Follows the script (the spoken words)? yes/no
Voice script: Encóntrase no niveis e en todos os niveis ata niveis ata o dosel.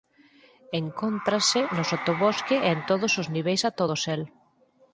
no